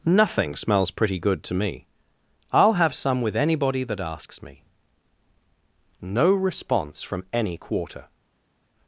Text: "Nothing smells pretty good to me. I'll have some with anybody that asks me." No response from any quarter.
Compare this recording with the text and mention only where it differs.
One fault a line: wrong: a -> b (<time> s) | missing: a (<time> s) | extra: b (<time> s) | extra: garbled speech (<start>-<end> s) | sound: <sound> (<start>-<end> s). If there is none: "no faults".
no faults